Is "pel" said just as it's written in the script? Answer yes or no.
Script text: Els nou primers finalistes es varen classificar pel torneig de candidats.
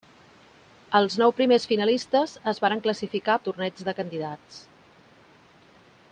no